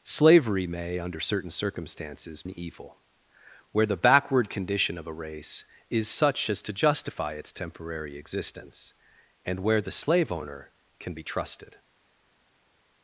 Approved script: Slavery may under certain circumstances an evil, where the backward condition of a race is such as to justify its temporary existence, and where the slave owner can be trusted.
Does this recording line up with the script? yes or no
yes